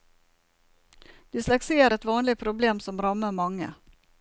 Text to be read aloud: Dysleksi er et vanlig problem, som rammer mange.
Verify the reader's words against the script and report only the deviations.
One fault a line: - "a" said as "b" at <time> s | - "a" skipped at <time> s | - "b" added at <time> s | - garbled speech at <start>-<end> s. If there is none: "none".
none